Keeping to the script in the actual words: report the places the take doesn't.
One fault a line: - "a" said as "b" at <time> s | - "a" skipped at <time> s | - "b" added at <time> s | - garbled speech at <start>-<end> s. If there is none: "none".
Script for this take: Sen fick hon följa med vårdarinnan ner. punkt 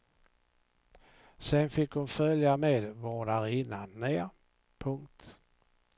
none